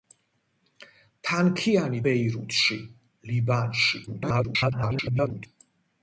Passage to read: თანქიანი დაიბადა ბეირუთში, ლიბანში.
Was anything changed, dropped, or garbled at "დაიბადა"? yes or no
yes